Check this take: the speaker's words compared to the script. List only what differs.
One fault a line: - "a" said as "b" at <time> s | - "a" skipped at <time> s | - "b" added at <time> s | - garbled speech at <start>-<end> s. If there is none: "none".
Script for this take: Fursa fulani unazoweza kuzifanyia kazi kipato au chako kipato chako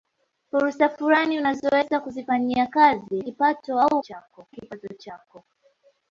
none